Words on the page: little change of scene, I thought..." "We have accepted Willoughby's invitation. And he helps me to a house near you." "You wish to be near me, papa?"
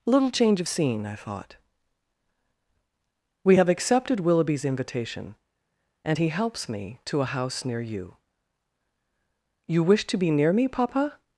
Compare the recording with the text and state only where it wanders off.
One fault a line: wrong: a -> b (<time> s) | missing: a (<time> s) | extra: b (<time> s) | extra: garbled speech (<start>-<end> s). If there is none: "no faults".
no faults